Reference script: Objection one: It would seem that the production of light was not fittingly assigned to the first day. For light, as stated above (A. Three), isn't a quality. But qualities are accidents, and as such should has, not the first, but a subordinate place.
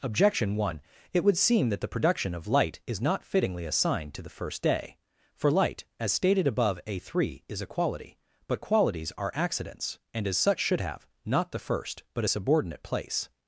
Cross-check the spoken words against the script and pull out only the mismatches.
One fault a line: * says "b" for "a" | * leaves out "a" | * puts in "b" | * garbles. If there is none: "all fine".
* says "is" for "was"
* says "is" for "isn't"
* says "have" for "has"